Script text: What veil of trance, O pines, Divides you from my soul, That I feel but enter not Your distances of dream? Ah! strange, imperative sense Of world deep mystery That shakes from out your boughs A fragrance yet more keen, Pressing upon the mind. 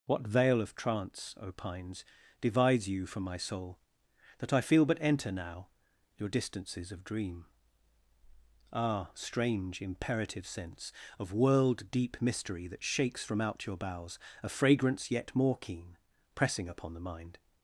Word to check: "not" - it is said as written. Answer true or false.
false